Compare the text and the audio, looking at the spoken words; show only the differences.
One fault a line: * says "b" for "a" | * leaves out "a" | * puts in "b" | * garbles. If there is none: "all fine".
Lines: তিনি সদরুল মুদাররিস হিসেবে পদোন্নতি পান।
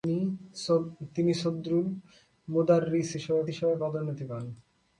* puts in "হিসেবে"